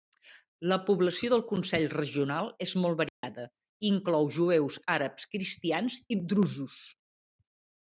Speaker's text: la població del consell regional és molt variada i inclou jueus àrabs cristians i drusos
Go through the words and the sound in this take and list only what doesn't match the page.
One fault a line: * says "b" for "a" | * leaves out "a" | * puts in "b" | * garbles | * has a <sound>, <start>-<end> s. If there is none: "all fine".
* has a dropout, 3.1-3.2 s